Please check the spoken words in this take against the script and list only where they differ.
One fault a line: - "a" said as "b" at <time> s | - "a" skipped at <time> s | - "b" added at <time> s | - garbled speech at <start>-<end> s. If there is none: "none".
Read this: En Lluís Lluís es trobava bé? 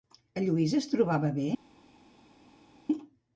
- "Lluís" skipped at 0.7 s